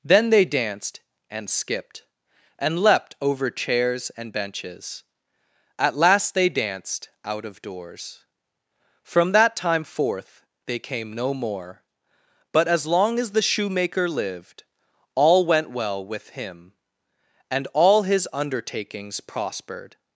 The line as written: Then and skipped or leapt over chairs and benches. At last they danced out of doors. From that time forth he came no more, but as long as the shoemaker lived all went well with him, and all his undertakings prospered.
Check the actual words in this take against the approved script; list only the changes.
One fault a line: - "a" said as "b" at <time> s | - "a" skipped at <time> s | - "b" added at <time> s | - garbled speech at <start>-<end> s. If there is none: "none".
- "they danced" added at 0.3 s
- "or" said as "and" at 2.6 s
- "he" said as "they" at 10.7 s